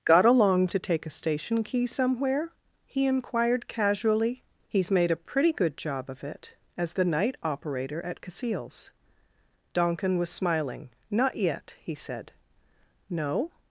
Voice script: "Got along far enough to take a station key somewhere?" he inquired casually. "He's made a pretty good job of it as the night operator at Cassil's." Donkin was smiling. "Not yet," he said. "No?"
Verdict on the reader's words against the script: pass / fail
fail